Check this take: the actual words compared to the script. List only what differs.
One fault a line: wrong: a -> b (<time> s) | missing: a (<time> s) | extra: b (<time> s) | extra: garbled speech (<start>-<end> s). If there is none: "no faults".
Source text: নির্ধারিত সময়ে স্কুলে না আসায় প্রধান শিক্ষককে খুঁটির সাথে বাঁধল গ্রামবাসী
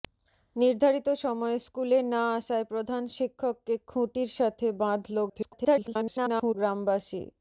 extra: garbled speech (5.3-6.5 s)